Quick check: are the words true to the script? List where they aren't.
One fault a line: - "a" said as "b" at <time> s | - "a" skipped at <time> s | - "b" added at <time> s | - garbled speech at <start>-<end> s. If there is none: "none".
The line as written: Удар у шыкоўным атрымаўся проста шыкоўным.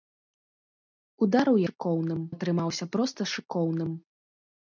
none